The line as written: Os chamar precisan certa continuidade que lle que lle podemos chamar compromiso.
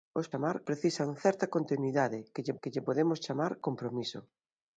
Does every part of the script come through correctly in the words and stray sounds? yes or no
yes